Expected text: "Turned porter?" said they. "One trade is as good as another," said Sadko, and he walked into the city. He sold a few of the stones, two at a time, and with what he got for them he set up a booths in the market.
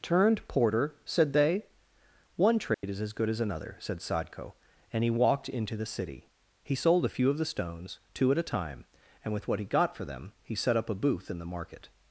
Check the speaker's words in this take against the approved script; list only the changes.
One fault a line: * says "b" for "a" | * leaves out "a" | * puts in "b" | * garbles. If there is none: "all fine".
* says "booth" for "booths"